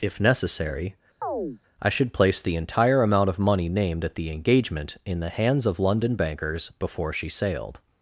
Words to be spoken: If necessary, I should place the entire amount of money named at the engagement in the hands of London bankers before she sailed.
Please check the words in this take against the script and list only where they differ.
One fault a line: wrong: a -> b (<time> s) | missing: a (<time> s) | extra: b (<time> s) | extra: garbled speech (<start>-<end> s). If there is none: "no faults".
no faults